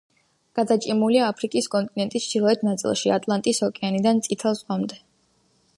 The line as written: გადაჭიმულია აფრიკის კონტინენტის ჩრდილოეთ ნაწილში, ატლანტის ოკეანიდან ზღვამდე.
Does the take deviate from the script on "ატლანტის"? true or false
false